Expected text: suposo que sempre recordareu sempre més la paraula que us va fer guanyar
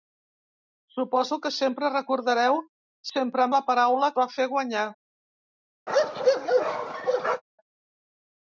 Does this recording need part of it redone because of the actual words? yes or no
yes